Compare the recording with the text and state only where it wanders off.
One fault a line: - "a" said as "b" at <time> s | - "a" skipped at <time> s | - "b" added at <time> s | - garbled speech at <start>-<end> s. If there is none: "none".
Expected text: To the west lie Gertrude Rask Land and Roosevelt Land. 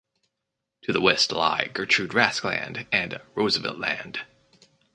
none